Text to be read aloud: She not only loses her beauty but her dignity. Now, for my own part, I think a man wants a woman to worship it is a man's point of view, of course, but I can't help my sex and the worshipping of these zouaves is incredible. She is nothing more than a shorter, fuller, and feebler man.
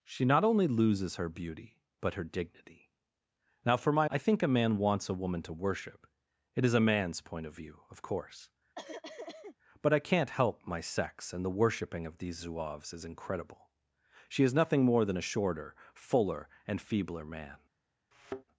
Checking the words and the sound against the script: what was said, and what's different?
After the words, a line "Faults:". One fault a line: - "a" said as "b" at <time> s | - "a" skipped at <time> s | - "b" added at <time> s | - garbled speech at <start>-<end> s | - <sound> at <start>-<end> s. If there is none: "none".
She not only loses her beauty but her dignity. Now, for my I think a man wants a woman to worship it is a man's point of view, of course, but I can't help my sex and the worshipping of these zouaves is incredible. She is nothing more than a shorter, fuller, and feebler man.
Faults:
- "own part" skipped at 4.1 s
- cough at 8.7-9.6 s
- thud at 18.1-18.4 s